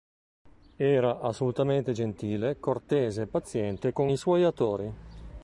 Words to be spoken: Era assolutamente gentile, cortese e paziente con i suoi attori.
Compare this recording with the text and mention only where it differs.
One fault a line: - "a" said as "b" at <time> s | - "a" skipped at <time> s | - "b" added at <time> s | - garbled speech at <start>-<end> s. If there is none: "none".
none